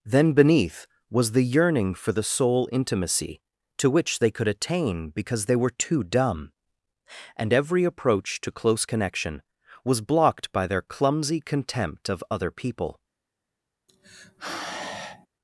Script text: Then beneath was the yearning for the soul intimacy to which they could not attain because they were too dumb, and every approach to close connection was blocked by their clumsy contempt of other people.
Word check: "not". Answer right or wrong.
wrong